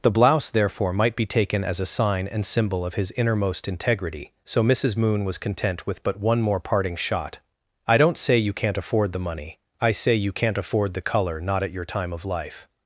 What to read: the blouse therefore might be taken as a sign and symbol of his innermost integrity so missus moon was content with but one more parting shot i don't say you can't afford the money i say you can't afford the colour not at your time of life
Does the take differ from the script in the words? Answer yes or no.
no